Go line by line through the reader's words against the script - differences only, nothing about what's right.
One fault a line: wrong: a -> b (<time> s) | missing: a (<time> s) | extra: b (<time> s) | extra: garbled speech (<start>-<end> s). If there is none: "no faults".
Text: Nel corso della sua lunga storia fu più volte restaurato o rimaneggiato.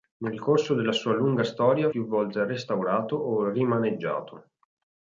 missing: fu (1.9 s)